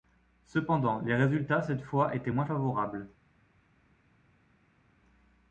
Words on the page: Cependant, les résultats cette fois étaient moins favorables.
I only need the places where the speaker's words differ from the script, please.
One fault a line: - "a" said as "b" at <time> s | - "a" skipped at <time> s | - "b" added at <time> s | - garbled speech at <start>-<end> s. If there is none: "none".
none